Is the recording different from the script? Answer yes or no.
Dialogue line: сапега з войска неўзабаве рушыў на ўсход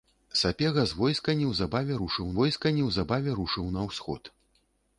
yes